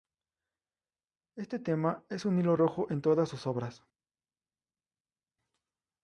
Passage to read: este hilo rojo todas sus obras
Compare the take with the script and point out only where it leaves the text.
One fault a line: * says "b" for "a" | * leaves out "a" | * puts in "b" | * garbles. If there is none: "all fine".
* puts in "tema es un"
* puts in "en"